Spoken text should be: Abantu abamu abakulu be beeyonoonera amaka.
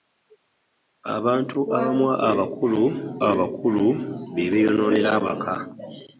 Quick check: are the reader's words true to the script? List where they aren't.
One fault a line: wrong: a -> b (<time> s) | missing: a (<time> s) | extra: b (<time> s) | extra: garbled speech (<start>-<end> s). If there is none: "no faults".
extra: abakulu (3.3 s)